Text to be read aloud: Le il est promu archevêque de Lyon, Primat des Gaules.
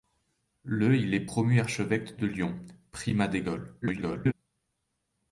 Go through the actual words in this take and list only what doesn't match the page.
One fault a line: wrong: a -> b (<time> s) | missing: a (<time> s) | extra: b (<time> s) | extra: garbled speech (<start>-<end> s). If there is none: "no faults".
extra: garbled speech (3.8-4.3 s)